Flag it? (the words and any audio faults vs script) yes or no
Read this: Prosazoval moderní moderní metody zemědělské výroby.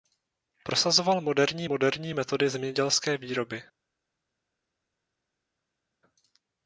no